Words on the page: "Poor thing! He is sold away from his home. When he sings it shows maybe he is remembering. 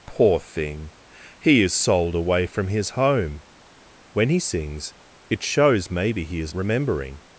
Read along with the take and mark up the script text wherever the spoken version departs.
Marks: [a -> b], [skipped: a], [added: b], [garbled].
"Poor thing! He is sold away from his home. When he sings it shows maybe he is remembering.